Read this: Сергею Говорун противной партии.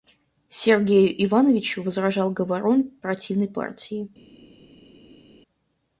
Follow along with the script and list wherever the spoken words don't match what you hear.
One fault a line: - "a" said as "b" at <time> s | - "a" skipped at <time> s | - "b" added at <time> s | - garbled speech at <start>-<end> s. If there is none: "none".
- "Ивановичу возражал" added at 1.2 s